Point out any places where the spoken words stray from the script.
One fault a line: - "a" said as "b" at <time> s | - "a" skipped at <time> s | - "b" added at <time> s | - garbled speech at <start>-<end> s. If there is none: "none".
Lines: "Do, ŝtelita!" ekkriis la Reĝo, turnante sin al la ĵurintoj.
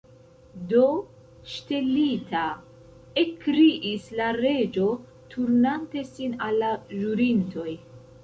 none